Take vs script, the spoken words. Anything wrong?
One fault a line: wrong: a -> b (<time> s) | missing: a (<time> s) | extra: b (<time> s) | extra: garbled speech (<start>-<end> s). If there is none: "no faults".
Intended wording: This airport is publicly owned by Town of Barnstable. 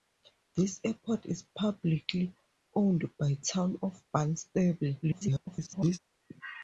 extra: garbled speech (5.0-6.0 s)